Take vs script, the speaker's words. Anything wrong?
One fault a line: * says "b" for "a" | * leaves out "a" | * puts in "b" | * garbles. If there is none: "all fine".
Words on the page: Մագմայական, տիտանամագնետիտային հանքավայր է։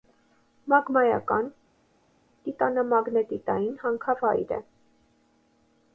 all fine